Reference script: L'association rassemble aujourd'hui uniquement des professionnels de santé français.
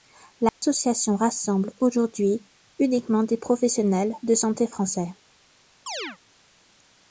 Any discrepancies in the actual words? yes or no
no